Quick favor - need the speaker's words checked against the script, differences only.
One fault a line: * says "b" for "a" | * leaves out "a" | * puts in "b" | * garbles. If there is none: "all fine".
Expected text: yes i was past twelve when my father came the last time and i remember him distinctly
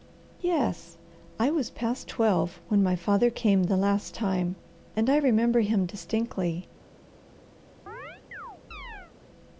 all fine